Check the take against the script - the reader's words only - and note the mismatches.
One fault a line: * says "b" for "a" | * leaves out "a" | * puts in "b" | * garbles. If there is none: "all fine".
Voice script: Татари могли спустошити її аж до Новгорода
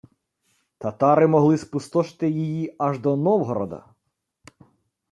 all fine